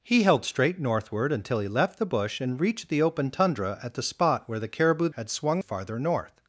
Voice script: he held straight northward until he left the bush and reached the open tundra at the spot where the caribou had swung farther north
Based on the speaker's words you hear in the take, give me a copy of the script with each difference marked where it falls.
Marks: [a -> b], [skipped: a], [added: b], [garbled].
he held straight northward until he left the bush and reached the open tundra at the spot where the caribou had swung farther north